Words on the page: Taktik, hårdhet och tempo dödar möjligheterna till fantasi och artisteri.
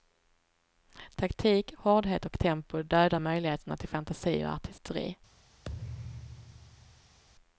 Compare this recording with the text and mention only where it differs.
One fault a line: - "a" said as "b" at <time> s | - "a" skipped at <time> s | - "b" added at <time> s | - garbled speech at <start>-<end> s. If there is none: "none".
none